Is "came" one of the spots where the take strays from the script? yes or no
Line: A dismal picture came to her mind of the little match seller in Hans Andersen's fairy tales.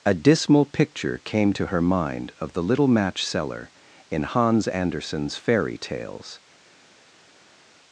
no